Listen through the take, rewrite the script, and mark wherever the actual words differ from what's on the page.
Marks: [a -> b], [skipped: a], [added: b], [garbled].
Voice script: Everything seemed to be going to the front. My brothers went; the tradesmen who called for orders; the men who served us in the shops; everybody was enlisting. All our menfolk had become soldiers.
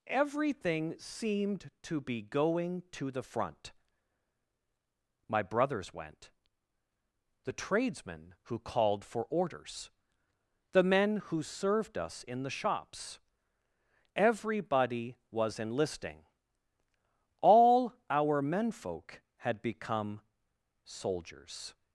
Everything seemed to be going to the front. My brothers went; the tradesmen who called for orders; the men who served us in the shops; everybody was enlisting. All our menfolk had become soldiers.